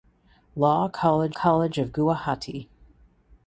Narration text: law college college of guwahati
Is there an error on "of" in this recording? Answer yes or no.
no